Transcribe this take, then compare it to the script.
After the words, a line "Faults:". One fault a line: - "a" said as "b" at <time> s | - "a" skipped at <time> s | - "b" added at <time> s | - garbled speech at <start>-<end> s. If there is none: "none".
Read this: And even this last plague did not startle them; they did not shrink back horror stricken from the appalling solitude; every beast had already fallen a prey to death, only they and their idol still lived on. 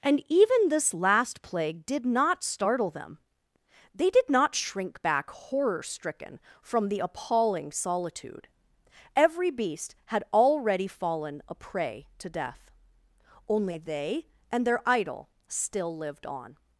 And even this last plague did not startle them; they did not shrink back horror stricken from the appalling solitude; every beast had already fallen a prey to death, only they and their idol still lived on.
Faults:
none